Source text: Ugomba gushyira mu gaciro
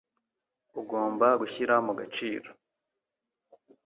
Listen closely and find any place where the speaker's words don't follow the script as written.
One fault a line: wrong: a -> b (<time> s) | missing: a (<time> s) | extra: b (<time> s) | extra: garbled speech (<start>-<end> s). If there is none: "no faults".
no faults